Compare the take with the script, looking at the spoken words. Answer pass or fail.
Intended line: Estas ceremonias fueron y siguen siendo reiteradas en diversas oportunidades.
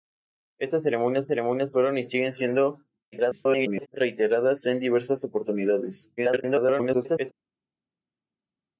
fail